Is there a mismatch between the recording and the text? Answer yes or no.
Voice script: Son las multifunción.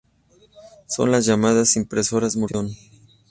yes